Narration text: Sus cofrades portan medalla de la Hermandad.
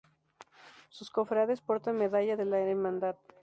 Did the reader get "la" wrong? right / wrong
right